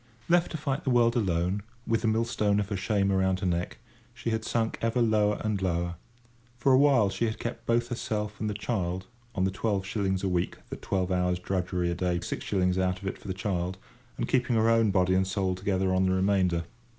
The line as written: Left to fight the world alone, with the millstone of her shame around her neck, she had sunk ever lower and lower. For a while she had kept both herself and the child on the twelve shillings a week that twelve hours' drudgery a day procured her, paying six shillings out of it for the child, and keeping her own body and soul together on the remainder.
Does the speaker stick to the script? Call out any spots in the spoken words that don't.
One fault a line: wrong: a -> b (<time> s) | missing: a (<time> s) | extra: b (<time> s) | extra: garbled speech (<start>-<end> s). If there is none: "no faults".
missing: procured her paying (12.2 s)